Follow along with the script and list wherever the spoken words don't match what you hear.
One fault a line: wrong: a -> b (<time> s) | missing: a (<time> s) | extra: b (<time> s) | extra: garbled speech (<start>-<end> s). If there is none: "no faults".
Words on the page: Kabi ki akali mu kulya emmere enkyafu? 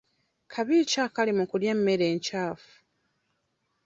no faults